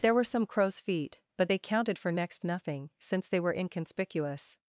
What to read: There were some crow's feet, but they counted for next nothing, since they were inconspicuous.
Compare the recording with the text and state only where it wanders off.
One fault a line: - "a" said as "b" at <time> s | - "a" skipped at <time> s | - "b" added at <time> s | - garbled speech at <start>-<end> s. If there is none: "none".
none